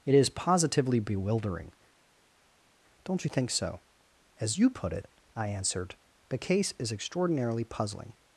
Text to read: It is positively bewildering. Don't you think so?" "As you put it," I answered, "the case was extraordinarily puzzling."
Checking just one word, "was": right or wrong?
wrong